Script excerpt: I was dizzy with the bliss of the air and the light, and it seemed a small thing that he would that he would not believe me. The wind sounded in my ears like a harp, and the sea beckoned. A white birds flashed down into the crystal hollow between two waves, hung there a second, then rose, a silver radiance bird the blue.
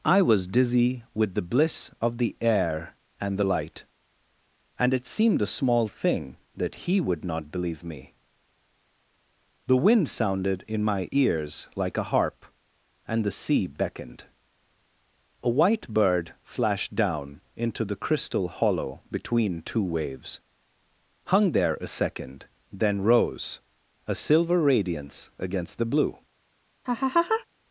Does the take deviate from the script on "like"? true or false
false